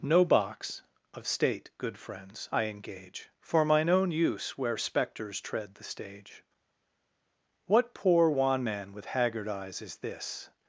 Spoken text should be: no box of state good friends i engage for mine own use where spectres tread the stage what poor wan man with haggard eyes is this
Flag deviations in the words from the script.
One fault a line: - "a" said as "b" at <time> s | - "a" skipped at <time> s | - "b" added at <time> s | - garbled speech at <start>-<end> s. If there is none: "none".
none